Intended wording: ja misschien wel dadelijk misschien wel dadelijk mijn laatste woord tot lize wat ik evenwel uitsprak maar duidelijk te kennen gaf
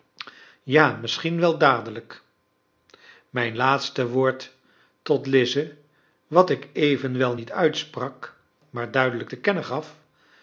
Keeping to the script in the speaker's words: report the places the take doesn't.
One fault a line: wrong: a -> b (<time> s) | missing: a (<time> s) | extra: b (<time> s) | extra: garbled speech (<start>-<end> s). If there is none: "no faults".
missing: misschien wel dadelijk (2.2 s)
extra: niet (7.3 s)